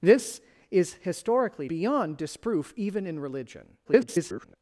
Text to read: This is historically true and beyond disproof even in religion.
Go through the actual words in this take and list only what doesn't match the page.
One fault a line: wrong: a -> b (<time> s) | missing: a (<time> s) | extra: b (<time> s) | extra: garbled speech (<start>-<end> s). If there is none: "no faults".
missing: true and (1.7 s)
extra: garbled speech (3.8-4.6 s)